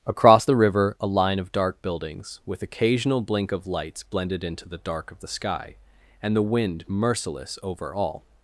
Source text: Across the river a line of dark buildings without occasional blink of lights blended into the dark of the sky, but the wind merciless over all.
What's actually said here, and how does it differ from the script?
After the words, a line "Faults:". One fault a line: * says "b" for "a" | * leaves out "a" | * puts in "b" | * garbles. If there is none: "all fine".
Across the river a line of dark buildings with occasional blink of lights blended into the dark of the sky, and the wind merciless over all.
Faults:
* says "with" for "without"
* says "and" for "but"